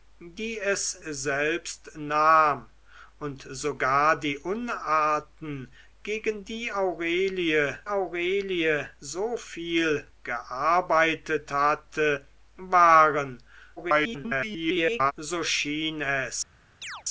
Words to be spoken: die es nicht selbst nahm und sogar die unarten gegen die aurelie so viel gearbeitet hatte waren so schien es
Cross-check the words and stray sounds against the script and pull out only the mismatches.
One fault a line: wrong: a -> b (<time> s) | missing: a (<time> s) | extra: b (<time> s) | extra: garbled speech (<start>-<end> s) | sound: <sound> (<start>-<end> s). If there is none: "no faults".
missing: nicht (1.0 s)
extra: aurelie (7.9 s)
extra: garbled speech (13.8-15.1 s)
sound: chirp (16.8-17.0 s)